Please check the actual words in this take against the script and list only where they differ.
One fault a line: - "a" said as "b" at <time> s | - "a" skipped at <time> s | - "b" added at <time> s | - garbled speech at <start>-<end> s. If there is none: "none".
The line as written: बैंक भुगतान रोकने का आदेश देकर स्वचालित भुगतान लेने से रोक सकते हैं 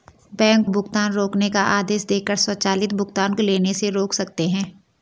none